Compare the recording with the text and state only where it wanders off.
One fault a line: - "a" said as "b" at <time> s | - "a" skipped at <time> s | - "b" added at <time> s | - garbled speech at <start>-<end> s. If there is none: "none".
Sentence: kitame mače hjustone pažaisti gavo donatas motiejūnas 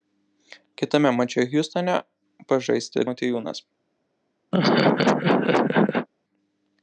- "gavo donatas" skipped at 3.1 s